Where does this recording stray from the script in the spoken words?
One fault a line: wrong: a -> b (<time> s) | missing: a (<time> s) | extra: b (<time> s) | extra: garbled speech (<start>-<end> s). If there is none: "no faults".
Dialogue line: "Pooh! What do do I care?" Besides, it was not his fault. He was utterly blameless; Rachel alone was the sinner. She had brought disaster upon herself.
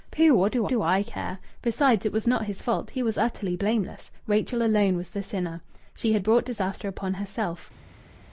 no faults